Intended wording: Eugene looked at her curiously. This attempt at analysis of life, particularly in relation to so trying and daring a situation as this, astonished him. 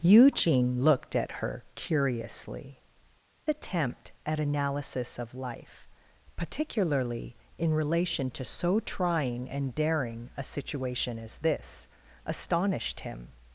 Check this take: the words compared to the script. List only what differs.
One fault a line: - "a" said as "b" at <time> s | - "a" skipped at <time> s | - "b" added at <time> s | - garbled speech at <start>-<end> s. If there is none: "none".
- "This" skipped at 2.8 s